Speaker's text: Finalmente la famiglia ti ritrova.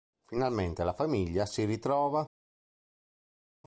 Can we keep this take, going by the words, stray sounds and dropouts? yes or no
no